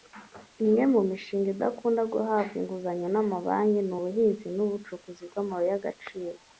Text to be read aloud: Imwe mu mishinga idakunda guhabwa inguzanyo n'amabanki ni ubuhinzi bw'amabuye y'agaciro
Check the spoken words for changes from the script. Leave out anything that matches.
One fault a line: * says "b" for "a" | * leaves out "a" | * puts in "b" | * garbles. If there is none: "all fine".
* puts in "n'ubucukuzi"